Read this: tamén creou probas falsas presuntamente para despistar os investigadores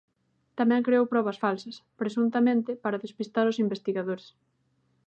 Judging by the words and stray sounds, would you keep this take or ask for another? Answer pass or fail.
pass